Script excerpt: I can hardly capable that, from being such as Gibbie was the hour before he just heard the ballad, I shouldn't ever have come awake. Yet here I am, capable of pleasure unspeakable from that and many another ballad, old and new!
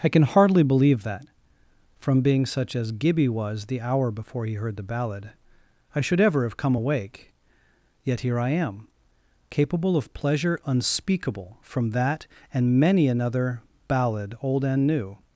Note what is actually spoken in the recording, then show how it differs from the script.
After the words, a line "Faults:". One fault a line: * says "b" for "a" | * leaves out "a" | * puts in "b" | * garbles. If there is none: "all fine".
I can hardly believe that, from being such as Gibbie was the hour before he heard the ballad, I should ever have come awake. Yet here I am, capable of pleasure unspeakable from that and many another ballad, old and new!
Faults:
* says "believe" for "capable"
* leaves out "just"
* says "should" for "shouldn't"